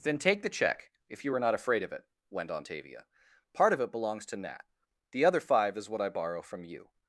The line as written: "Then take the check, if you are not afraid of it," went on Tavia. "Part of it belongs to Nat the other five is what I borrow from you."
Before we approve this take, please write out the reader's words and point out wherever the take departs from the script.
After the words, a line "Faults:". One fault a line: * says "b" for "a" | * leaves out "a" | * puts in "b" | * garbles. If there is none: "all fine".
"Then take the check, if you are not afraid of it," went on Tavia. "Part of it belongs to Nat the other five is what I borrow from you."
Faults:
all fine